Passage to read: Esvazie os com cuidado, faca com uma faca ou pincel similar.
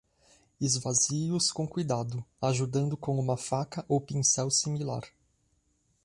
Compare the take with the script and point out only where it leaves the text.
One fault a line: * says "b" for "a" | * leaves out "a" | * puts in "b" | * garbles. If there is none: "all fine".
* says "ajudando" for "faca"